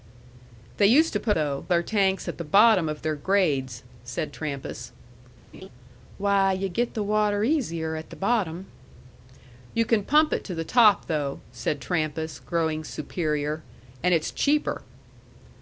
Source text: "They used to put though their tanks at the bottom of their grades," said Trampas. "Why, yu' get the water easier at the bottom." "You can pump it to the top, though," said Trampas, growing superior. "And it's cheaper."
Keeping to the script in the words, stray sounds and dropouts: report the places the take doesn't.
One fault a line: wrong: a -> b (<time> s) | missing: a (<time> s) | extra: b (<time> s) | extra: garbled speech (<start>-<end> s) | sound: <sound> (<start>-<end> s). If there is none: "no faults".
sound: laugh (5.5-5.7 s)